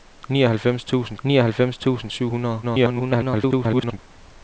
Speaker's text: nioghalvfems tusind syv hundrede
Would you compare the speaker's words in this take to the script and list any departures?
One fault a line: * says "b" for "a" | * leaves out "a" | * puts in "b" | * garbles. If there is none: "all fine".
* puts in "nioghalvfems tusind"
* garbles